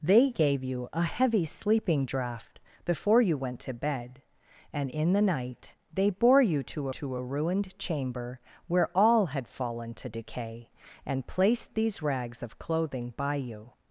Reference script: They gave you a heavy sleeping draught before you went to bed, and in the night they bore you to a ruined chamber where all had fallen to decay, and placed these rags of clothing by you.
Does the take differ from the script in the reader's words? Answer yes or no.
yes